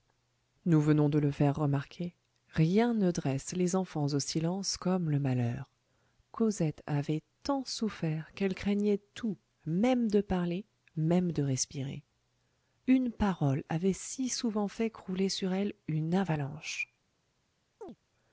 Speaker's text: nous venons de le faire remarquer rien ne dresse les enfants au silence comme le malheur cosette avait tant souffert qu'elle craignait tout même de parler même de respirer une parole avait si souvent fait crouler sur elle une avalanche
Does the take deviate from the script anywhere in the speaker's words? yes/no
no